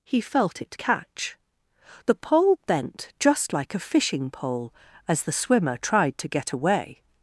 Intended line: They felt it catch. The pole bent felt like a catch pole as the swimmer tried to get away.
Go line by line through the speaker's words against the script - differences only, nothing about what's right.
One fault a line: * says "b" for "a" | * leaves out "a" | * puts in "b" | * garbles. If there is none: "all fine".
* says "He" for "They"
* says "just" for "felt"
* says "fishing" for "catch"